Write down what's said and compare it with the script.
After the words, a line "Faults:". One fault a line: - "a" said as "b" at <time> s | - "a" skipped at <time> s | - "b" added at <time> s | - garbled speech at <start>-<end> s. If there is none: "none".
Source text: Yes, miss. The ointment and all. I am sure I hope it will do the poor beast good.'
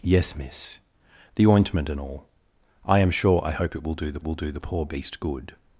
Yes, miss. The ointment and all. I am sure I hope it will do the will do the poor beast good.'
Faults:
- "will do the" added at 4.2 s